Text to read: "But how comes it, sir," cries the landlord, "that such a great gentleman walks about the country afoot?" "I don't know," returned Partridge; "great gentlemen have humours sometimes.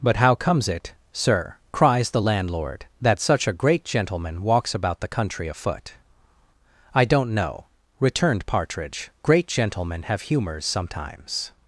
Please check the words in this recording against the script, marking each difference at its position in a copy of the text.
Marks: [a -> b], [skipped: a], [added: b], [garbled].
"But how comes it, sir," cries the landlord, "that such a great gentleman walks about the country afoot?" "I don't know," returned Partridge; "great gentlemen have humours sometimes.